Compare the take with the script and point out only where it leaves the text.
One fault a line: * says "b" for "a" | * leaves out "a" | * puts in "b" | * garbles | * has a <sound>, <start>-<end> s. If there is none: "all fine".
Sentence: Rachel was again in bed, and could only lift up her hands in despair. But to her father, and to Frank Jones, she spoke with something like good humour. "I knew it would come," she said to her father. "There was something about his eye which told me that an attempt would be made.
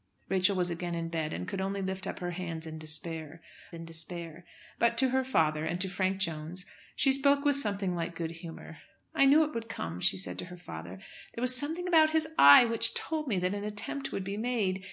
* puts in "in despair"